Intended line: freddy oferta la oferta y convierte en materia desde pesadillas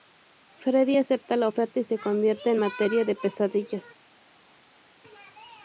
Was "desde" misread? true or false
true